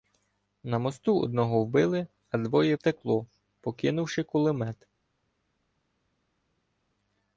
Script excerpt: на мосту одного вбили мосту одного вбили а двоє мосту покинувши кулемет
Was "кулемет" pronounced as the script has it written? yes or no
yes